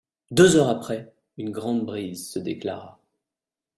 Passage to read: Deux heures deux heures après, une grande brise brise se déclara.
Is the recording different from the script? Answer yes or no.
yes